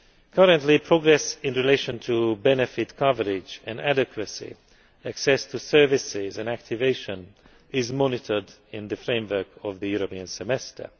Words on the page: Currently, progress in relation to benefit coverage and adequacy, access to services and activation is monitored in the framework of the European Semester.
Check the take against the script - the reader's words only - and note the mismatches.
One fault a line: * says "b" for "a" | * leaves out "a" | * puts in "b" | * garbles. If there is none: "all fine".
all fine